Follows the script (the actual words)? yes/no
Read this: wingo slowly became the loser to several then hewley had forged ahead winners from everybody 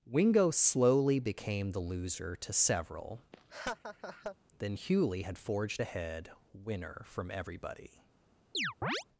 no